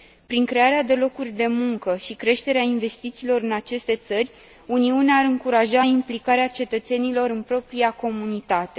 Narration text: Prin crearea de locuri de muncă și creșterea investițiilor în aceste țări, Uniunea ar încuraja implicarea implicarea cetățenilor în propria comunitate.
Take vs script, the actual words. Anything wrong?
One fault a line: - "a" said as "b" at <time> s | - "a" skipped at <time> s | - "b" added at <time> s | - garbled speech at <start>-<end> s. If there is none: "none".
- "implicarea" skipped at 6.5 s